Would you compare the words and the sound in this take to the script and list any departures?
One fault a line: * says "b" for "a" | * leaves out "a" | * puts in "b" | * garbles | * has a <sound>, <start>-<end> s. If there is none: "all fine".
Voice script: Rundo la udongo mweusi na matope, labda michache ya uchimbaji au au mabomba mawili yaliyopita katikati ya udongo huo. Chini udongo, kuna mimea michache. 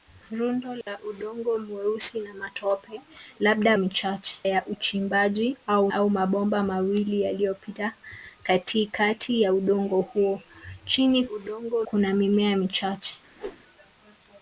* has a dropout, 0.8-0.9 s
* has a whoosh, 13.3-13.6 s